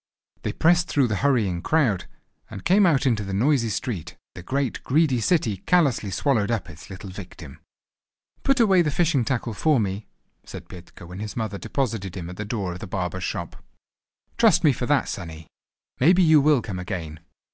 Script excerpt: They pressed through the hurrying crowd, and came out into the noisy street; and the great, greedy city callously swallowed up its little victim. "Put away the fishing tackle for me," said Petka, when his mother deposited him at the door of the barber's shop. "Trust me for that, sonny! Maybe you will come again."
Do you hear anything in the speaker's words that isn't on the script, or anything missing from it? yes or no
yes